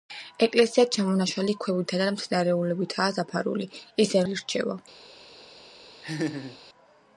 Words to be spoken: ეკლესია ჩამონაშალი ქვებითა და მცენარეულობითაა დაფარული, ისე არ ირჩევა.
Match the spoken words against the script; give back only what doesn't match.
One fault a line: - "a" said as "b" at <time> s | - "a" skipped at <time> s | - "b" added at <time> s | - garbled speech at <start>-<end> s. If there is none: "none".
none